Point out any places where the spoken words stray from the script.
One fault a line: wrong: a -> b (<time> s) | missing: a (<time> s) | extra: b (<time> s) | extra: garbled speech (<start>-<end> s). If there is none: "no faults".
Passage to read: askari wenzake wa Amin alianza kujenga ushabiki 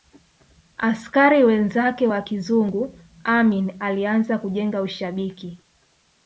extra: kizungu (2.2 s)